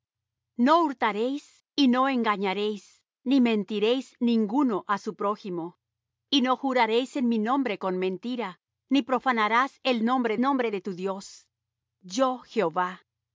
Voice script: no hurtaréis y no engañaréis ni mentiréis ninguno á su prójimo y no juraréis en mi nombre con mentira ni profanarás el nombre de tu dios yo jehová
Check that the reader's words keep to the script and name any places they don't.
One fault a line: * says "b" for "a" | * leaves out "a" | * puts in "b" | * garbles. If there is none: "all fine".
* puts in "nombre"